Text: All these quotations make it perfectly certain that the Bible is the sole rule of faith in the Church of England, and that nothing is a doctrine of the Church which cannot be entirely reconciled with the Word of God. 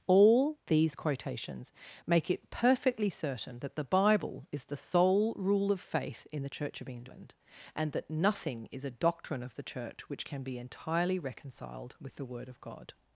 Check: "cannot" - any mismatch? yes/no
yes